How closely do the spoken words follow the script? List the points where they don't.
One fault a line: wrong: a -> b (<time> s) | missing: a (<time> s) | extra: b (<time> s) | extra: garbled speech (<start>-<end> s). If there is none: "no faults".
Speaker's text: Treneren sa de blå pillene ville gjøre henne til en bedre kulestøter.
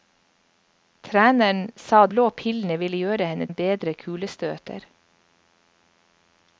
missing: de (2.1 s)
missing: til (3.5 s)